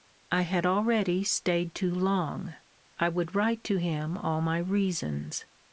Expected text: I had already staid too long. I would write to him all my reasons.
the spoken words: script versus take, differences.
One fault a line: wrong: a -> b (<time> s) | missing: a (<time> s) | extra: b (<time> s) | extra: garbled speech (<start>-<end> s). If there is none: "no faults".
no faults